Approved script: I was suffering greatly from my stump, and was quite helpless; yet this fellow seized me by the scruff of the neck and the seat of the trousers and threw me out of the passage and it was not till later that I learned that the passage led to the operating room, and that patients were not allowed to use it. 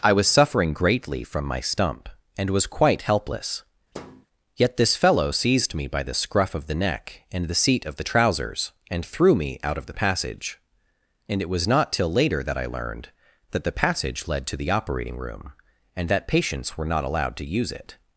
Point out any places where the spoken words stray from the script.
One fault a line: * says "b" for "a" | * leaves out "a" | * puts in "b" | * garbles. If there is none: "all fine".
all fine